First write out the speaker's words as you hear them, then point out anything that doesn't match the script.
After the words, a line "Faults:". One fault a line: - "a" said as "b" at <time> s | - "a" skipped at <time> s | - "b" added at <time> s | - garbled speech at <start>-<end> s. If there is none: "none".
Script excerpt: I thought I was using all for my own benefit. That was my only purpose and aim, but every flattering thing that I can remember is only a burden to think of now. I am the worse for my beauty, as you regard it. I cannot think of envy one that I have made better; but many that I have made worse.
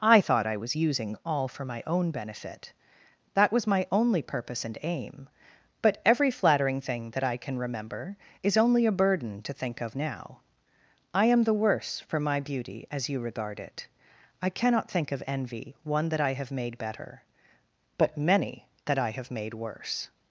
I thought I was using all for my own benefit. That was my only purpose and aim, but every flattering thing that I can remember is only a burden to think of now. I am the worse for my beauty, as you regard it. I cannot think of envy one that I have made better; but many that I have made worse.
Faults:
none